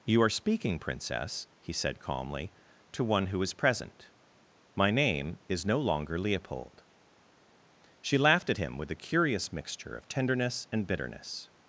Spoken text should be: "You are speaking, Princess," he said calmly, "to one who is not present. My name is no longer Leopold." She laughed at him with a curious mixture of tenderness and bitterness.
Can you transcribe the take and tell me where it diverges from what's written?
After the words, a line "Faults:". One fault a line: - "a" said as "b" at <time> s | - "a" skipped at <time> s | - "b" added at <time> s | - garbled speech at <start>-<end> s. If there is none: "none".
"You are speaking, Princess," he said calmly, "to one who is present. My name is no longer Leopold." She laughed at him with a curious mixture of tenderness and bitterness.
Faults:
- "not" skipped at 3.5 s